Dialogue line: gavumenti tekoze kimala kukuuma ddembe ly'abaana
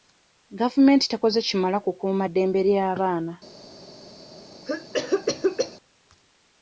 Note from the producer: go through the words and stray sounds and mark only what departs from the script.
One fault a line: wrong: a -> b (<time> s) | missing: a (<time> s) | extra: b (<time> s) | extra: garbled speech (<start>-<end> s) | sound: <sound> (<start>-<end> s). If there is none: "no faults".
sound: cough (4.6-5.8 s)